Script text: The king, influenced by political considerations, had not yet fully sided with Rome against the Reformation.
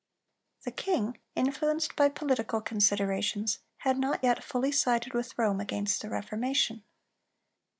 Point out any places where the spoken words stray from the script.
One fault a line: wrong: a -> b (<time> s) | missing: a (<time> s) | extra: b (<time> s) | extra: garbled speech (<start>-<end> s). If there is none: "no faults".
no faults